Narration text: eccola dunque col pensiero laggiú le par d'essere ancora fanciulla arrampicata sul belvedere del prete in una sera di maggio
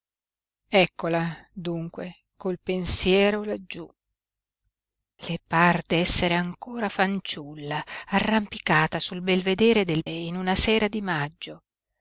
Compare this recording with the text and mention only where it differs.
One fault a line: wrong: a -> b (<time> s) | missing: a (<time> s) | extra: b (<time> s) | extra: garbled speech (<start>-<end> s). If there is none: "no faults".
missing: prete (10.1 s)